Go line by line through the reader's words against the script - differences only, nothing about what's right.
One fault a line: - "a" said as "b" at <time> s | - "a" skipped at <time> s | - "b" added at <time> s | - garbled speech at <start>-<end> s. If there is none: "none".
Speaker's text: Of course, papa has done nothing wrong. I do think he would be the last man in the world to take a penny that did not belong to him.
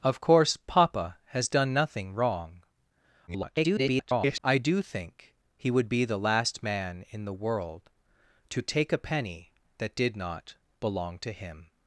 - garbled speech at 3.3-4.4 s